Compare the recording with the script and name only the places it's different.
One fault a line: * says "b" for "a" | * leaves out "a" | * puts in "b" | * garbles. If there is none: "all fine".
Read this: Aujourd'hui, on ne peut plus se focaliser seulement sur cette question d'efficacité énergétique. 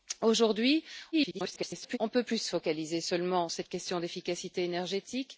* garbles
* leaves out "sur"